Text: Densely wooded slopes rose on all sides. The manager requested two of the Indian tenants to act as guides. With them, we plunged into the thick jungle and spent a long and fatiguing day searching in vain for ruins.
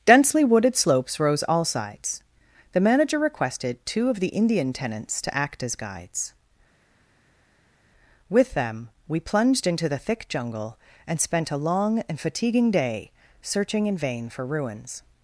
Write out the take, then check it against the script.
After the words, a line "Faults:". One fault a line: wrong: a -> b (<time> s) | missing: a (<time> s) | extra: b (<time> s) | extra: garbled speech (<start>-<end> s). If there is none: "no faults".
Densely wooded slopes rose all sides. The manager requested two of the Indian tenants to act as guides. With them, we plunged into the thick jungle and spent a long and fatiguing day searching in vain for ruins.
Faults:
missing: on (1.4 s)